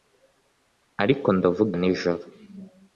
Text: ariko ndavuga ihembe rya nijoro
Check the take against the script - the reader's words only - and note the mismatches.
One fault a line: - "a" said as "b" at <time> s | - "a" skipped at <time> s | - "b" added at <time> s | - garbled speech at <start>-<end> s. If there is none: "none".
- "ihembe rya" skipped at 1.7 s